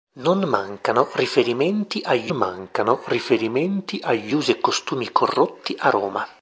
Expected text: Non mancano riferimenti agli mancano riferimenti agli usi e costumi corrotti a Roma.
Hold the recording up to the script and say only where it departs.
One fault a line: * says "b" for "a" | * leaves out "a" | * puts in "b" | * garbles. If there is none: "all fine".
all fine